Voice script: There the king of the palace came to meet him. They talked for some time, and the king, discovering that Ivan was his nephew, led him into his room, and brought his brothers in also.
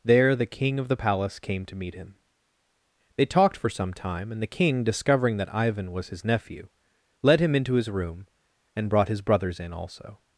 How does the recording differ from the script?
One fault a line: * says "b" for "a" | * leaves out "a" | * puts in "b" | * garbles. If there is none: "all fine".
all fine